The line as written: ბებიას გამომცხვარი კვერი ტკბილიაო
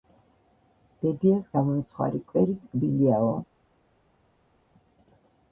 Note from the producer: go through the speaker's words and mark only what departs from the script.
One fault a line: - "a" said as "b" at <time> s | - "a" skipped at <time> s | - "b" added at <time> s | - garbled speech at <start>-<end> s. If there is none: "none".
none